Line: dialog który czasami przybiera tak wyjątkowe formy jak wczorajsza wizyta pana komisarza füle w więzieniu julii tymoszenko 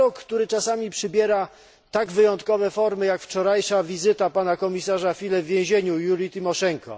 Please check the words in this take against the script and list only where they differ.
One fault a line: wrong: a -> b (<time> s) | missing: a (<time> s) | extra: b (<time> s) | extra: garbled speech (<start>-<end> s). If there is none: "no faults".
no faults